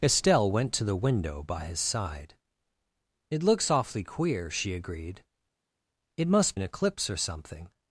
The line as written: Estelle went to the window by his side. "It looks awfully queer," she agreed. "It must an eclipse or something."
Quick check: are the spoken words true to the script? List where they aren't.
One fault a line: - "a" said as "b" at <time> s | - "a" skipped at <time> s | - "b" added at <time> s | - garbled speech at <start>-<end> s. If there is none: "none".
none